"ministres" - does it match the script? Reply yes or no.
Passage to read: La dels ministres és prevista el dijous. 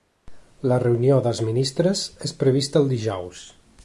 yes